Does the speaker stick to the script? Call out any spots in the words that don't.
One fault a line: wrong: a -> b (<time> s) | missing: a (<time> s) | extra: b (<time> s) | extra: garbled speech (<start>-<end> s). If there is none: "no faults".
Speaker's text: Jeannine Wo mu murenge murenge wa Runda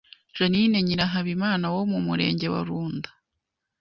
extra: Nyirahabimana (0.8 s)
missing: murenge (2.5 s)